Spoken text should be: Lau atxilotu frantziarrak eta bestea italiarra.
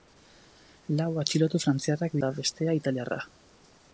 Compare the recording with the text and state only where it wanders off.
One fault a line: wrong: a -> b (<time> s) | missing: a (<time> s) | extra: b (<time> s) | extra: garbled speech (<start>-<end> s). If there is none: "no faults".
no faults